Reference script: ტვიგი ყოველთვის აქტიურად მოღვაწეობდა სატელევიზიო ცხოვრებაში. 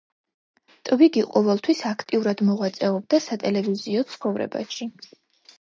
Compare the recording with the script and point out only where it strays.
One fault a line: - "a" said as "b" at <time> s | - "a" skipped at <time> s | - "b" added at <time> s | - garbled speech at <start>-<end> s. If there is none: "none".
none